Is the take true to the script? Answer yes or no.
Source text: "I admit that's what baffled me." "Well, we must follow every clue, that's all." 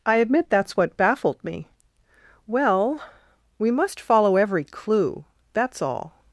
yes